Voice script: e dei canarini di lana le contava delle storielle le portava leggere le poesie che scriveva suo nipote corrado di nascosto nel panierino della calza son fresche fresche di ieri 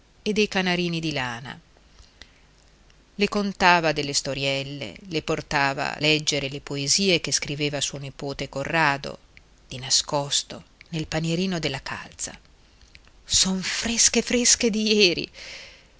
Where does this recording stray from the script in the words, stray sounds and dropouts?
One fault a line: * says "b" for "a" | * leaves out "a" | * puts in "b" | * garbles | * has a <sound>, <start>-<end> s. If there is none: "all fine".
all fine